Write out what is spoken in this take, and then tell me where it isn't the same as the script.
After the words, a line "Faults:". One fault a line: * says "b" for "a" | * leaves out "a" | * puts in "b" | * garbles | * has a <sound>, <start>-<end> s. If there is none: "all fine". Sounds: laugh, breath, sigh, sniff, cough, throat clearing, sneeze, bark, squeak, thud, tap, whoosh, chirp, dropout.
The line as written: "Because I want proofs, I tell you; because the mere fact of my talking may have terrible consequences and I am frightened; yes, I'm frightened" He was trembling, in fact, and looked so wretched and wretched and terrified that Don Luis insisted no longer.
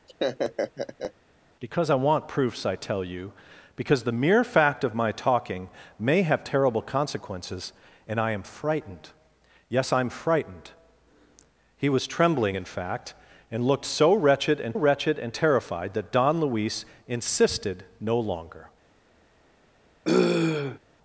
"Because I want proofs, I tell you; because the mere fact of my talking may have terrible consequences and I am frightened; yes, I'm frightened" He was trembling, in fact, and looked so wretched and wretched and terrified that Don Luis insisted no longer.
Faults:
* has a laugh, 0.1-1.1 s
* has a throat clearing, 20.0-20.8 s